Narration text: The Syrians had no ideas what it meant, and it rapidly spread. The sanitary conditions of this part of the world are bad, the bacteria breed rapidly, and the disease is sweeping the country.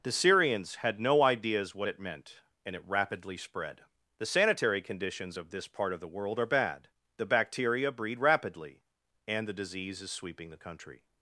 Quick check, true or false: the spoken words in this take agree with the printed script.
true